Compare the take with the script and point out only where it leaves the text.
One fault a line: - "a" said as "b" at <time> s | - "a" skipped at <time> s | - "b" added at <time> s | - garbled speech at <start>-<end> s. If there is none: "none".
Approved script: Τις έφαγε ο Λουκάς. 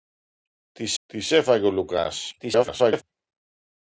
- "τις" added at 1.0 s
- garbled speech at 2.4-3.0 s